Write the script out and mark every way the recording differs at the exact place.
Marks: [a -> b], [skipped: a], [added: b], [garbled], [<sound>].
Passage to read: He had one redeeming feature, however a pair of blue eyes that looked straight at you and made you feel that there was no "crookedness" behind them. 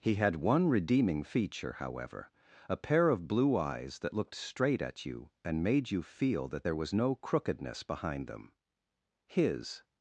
He had one redeeming feature, however a pair of blue eyes that looked straight at you and made you feel that there was no "crookedness" behind them. [added: His]